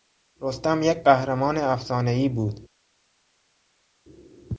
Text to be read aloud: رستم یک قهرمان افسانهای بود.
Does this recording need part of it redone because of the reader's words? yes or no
no